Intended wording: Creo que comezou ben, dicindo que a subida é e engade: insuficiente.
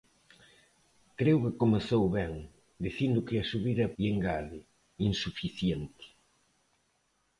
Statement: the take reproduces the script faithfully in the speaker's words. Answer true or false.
true